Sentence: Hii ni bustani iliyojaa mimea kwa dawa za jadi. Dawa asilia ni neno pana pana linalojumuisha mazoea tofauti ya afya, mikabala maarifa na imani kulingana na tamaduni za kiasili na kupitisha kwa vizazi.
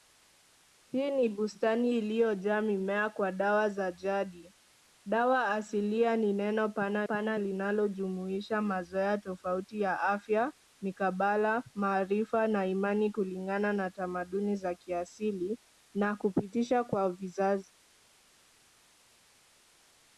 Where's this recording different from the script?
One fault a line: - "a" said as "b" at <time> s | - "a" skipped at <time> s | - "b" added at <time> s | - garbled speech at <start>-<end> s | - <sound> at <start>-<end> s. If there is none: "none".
none